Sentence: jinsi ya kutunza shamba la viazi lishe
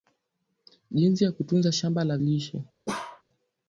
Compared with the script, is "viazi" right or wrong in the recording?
wrong